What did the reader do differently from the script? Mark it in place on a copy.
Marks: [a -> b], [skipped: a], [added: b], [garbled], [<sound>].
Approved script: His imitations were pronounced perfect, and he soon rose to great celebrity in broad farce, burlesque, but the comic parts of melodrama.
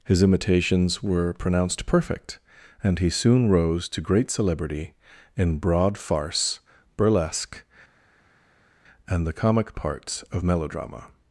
His imitations were pronounced perfect, and he soon rose to great celebrity in broad farce, burlesque, [but -> and] the comic parts of melodrama.